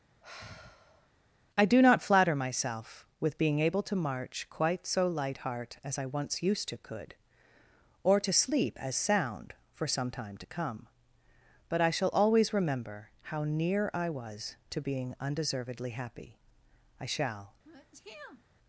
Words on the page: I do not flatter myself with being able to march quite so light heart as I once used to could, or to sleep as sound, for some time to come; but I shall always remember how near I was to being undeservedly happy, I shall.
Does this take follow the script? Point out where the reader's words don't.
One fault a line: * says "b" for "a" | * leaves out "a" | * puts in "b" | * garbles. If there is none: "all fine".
all fine